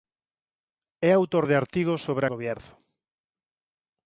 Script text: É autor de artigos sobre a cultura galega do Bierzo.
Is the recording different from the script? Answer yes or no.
yes